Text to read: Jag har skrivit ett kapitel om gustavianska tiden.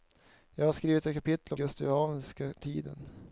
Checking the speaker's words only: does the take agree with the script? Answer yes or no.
yes